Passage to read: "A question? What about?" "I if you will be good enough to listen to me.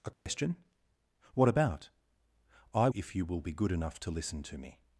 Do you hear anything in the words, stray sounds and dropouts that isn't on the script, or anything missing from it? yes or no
yes